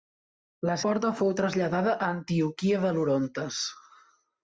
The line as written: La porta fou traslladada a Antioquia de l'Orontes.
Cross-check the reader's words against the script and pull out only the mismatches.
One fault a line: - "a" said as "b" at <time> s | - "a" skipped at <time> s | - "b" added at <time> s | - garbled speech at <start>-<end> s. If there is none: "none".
none